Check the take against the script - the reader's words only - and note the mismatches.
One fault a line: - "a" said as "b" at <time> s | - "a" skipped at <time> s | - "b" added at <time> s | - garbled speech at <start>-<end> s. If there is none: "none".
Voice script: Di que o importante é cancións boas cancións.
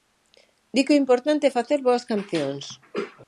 - "cancións" said as "facer" at 1.6 s